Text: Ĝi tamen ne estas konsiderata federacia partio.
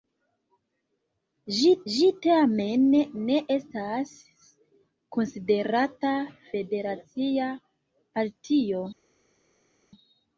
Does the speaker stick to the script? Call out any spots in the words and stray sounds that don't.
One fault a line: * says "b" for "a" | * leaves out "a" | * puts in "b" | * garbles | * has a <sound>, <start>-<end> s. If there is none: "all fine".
* puts in "ĝi"